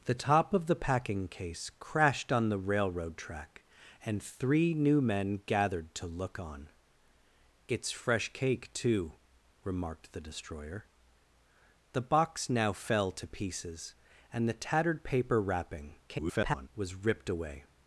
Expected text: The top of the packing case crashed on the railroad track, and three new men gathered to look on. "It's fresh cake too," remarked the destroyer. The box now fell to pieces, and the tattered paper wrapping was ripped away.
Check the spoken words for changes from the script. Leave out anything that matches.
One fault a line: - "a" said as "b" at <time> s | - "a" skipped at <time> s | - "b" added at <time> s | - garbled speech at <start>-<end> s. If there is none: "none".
- garbled speech at 16.1-16.7 s